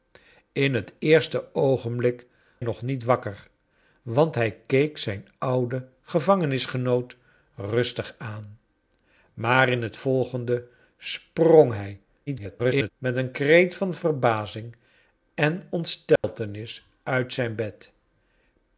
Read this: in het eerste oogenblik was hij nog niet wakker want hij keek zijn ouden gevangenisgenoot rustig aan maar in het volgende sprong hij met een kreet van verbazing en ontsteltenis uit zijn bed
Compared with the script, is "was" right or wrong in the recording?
wrong